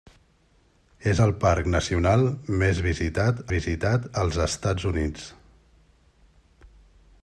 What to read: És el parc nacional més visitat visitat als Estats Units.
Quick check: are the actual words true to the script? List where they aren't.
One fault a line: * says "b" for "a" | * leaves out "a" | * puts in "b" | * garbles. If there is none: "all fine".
all fine